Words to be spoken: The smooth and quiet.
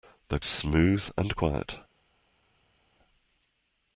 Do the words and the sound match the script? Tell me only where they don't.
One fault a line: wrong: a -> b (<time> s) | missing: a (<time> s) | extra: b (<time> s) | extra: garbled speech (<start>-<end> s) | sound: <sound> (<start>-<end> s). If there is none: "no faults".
no faults